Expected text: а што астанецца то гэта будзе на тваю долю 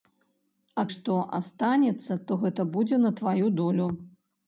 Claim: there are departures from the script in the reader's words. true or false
false